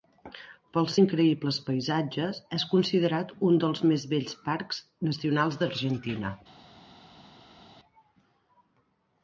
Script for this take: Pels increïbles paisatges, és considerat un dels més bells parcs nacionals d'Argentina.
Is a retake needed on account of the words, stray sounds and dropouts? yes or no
no